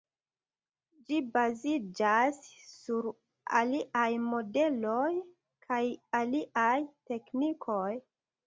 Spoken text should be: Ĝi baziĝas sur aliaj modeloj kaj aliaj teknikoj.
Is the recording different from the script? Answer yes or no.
no